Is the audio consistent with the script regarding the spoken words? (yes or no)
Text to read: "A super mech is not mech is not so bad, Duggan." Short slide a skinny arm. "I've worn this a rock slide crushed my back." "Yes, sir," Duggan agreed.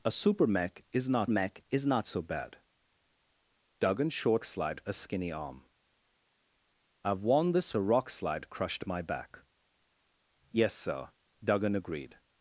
yes